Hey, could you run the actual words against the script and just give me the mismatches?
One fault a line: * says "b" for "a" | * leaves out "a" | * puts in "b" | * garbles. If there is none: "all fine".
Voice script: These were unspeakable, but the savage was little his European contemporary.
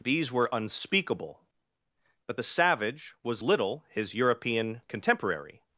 all fine